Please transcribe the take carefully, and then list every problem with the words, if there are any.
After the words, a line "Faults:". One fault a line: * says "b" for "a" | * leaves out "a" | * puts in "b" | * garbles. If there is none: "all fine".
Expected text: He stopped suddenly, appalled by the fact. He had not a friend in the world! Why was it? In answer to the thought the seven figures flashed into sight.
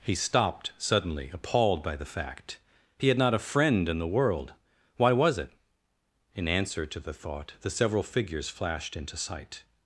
He stopped suddenly, appalled by the fact. He had not a friend in the world! Why was it? In answer to the thought the several figures flashed into sight.
Faults:
* says "several" for "seven"